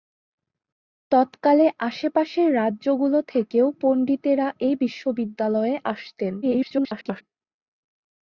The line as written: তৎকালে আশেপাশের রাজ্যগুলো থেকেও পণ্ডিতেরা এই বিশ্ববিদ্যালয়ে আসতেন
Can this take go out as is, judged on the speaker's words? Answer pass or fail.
fail